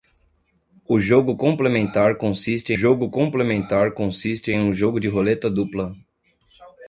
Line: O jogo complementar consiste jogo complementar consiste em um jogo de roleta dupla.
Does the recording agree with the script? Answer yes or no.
yes